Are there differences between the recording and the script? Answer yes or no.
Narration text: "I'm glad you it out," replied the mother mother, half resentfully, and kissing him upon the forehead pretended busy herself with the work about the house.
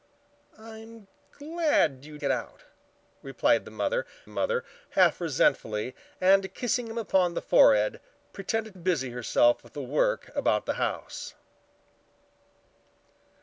no